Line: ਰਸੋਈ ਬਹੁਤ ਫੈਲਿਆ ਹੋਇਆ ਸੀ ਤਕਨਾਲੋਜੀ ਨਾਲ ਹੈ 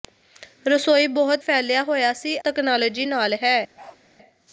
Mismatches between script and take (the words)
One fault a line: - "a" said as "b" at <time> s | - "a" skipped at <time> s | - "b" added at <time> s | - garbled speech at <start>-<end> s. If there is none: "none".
none